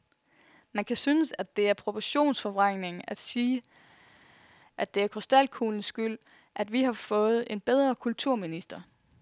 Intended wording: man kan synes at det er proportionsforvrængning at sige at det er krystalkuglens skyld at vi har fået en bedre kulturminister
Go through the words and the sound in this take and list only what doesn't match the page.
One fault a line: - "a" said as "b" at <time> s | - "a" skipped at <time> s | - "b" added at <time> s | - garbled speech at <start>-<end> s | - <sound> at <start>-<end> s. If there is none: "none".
none